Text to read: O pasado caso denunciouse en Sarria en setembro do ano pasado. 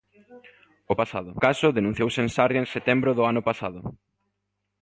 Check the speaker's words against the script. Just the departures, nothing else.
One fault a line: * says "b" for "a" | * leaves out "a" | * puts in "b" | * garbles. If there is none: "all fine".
all fine